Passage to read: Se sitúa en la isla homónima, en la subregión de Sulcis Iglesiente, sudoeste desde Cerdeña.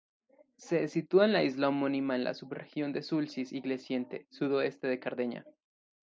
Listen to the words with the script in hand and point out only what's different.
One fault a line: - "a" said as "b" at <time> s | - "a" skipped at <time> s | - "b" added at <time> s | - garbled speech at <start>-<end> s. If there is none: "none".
- "desde" said as "de" at 4.9 s